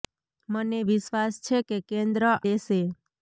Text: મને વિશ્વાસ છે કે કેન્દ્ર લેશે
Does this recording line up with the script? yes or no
yes